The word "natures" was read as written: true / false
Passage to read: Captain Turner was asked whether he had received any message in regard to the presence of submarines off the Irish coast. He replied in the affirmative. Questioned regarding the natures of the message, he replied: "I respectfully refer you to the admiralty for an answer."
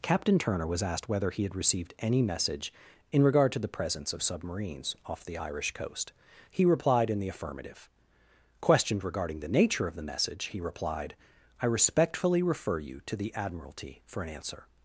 false